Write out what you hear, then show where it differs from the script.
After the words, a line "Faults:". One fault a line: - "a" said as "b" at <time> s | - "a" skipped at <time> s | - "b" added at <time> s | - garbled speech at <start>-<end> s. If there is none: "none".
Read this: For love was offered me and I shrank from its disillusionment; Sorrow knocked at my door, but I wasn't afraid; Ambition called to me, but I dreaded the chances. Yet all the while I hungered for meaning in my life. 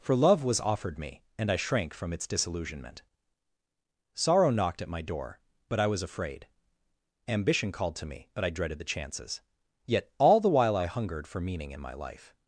For love was offered me and I shrank from its disillusionment; Sorrow knocked at my door, but I was afraid; Ambition called to me, but I dreaded the chances. Yet all the while I hungered for meaning in my life.
Faults:
- "wasn't" said as "was" at 5.8 s